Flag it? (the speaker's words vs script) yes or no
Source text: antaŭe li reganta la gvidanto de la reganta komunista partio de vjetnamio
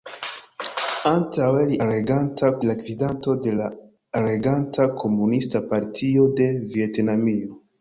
no